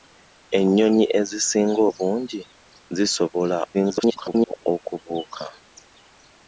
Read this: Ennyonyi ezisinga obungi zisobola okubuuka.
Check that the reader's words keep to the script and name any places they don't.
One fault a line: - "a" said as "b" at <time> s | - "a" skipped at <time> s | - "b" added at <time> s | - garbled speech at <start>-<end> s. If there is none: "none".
- garbled speech at 3.7-4.7 s